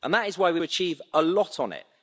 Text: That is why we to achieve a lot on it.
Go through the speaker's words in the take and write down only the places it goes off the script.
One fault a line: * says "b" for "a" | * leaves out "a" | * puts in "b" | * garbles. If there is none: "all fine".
all fine